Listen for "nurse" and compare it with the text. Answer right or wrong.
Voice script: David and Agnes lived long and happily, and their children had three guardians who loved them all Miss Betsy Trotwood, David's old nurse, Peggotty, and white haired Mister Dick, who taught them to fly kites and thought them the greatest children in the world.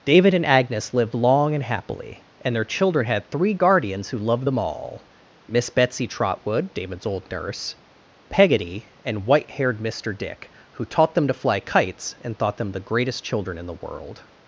right